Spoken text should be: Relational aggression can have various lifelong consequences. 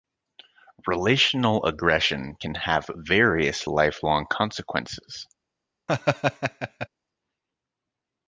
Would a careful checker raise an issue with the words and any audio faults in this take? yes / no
yes